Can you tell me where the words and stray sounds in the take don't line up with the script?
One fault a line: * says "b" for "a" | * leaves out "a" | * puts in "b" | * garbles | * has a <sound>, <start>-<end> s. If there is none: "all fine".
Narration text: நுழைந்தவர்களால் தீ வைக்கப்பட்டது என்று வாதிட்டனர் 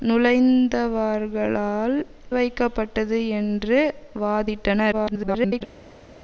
* leaves out "தீ"
* garbles